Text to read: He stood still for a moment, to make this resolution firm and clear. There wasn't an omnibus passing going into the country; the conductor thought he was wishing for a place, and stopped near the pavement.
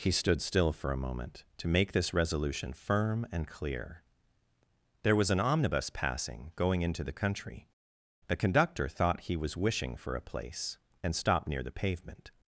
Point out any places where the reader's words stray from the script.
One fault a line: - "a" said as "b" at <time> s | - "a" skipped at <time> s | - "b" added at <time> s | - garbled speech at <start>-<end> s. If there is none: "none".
- "wasn't" said as "was" at 5.1 s